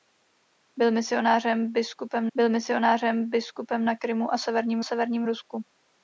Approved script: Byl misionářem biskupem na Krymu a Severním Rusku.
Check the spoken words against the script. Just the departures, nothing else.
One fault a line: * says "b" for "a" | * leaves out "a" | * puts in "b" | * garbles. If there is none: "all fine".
* puts in "byl misionářem biskupem"
* puts in "Severním"